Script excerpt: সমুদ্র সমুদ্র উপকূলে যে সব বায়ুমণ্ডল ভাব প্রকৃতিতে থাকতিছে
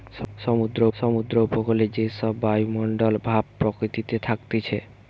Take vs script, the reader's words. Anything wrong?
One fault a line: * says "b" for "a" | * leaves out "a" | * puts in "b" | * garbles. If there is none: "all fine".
all fine